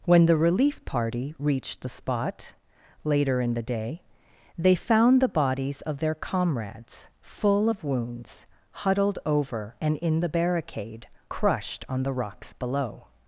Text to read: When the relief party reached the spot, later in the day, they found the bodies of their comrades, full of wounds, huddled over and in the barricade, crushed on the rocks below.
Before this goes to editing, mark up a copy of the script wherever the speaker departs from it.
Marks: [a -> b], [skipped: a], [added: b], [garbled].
When the relief party reached the spot, later in the day, they found the bodies of their comrades, full of wounds, huddled over and in the barricade, crushed on the rocks below.